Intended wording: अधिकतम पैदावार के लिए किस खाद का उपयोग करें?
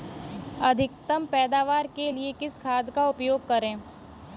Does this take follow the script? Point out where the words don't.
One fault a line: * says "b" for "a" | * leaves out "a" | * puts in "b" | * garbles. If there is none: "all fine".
all fine